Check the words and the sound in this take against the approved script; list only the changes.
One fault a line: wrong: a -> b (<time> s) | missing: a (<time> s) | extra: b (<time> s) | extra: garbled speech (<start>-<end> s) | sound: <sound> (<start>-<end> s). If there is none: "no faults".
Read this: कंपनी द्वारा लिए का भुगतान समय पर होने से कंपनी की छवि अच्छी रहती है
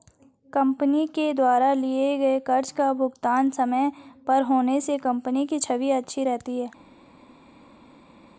extra: के (1.1 s)
extra: गए कर्ज (2.2 s)